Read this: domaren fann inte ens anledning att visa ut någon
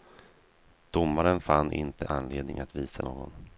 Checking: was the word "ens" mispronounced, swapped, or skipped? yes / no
yes